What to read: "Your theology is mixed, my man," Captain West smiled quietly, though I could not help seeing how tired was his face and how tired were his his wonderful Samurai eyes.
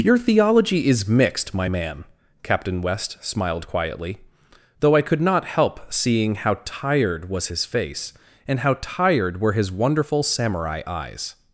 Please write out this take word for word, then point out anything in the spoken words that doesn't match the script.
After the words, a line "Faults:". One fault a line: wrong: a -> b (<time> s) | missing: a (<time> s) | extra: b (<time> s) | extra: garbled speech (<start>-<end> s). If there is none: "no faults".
"Your theology is mixed, my man," Captain West smiled quietly, though I could not help seeing how tired was his face and how tired were his wonderful Samurai eyes.
Faults:
missing: his (9.7 s)